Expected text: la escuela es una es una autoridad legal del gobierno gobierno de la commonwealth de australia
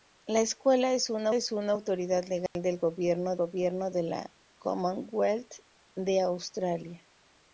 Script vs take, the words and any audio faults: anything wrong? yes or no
yes